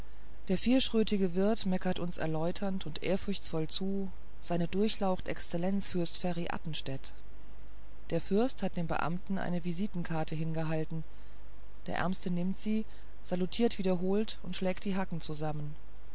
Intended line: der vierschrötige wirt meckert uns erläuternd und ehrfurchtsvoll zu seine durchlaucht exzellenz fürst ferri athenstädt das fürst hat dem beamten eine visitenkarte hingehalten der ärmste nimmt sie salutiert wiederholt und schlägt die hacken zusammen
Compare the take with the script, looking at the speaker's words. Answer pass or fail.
fail